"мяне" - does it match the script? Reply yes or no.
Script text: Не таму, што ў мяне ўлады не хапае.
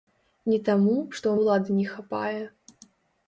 no